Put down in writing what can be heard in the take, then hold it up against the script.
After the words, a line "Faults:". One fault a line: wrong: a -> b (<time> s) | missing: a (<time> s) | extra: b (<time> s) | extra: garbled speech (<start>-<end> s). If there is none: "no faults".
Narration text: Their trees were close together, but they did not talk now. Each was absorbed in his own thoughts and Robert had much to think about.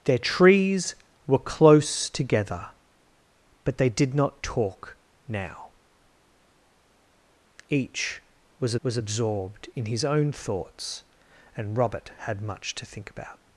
Their trees were close together, but they did not talk now. Each was was absorbed in his own thoughts and Robert had much to think about.
Faults:
extra: was (8.8 s)